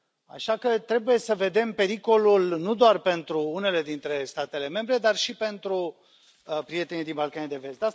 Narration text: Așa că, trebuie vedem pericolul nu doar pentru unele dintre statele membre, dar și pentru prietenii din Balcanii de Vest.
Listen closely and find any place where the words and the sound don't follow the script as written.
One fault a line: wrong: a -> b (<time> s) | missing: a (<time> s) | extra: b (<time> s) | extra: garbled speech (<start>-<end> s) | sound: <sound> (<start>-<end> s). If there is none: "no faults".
extra: să (1.2 s)